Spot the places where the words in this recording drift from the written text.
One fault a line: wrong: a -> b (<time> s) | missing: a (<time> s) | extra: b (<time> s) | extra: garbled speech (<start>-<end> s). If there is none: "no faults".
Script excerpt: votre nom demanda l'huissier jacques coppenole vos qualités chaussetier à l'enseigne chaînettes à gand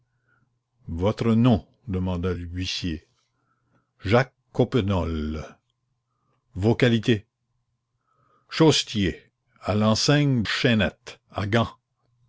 no faults